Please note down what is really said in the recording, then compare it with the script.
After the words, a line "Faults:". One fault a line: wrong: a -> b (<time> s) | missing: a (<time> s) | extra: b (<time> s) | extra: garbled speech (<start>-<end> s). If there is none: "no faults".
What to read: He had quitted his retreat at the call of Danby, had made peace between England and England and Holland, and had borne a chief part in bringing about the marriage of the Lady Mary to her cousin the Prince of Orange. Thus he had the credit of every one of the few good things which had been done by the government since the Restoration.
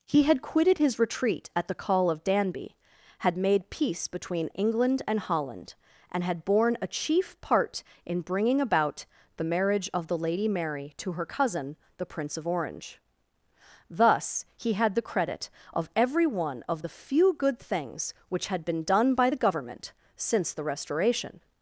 He had quitted his retreat at the call of Danby, had made peace between England and Holland, and had borne a chief part in bringing about the marriage of the Lady Mary to her cousin the Prince of Orange. Thus he had the credit of every one of the few good things which had been done by the government since the Restoration.
Faults:
missing: England and (5.2 s)